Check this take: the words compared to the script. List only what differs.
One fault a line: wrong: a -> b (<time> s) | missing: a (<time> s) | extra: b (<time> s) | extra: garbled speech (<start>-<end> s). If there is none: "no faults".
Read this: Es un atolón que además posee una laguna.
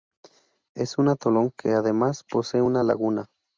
no faults